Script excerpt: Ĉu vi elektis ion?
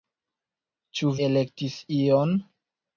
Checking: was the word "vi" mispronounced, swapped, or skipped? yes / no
yes